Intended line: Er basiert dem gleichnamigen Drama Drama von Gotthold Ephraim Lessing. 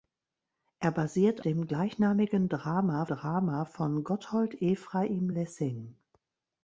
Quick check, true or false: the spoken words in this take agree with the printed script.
true